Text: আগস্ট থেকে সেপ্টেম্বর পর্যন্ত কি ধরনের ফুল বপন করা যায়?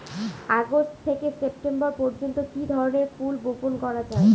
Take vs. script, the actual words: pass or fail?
pass